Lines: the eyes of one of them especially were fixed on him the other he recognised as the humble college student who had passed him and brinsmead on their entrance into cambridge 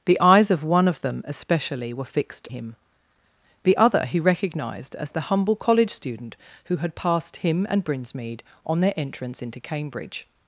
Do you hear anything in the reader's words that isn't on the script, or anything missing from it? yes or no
yes